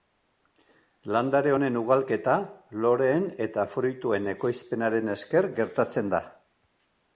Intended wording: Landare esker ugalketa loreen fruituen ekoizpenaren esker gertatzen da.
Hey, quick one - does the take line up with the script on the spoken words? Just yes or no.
no